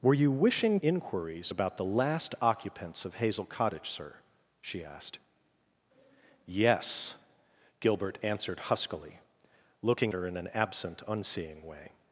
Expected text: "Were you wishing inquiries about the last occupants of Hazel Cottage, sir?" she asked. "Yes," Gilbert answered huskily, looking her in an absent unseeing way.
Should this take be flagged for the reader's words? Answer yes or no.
no